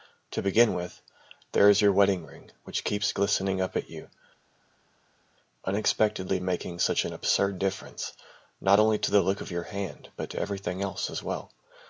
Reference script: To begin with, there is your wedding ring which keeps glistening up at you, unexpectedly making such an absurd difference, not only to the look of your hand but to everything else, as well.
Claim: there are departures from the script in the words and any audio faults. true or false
false